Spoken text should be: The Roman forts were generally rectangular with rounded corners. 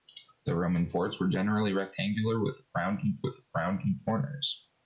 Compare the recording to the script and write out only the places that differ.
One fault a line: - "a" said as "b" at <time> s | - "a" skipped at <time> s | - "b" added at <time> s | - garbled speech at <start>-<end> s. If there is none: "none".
- "with rounded" added at 3.2 s